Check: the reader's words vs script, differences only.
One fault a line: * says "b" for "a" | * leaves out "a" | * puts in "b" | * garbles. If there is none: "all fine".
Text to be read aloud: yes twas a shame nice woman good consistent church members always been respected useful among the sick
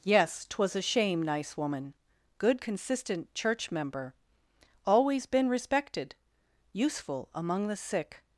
* says "member" for "members"